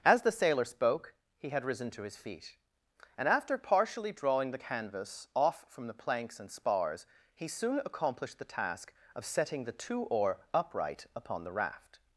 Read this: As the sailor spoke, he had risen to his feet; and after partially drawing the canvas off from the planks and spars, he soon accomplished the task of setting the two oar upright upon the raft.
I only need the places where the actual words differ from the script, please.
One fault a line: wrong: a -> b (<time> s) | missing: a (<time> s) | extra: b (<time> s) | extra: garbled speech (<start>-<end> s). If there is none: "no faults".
no faults